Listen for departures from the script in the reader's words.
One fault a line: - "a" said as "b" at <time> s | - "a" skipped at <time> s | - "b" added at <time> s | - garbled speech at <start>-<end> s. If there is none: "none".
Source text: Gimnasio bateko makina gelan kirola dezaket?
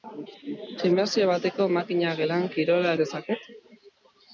none